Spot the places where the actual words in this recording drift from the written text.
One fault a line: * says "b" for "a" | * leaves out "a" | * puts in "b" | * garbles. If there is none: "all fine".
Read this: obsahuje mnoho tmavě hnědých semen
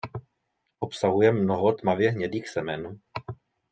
all fine